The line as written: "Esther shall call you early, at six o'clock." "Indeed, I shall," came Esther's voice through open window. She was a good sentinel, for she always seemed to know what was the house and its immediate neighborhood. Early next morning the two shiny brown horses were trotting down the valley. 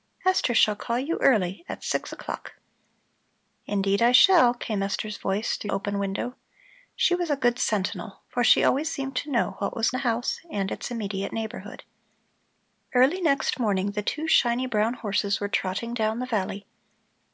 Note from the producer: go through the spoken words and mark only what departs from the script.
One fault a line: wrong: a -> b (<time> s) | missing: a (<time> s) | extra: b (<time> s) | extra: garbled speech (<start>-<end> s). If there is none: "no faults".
no faults